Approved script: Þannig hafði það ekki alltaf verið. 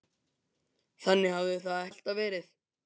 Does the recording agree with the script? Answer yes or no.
no